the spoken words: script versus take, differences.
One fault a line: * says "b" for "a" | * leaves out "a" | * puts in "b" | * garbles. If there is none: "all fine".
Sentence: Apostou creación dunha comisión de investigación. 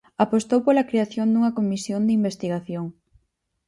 * puts in "pola"